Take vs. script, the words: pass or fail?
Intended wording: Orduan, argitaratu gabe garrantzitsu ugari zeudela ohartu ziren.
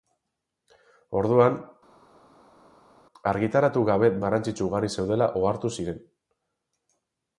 pass